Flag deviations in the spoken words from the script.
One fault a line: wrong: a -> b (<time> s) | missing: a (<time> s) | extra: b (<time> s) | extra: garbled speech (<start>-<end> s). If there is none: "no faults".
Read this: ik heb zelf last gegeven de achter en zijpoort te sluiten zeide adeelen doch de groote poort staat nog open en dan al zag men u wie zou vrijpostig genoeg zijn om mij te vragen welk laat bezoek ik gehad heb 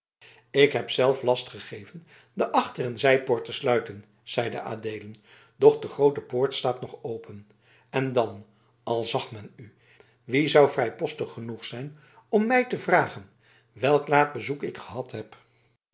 no faults